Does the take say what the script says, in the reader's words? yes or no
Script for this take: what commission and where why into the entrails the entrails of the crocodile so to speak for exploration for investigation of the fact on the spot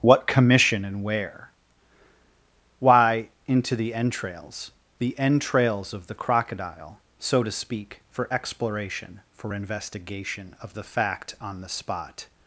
yes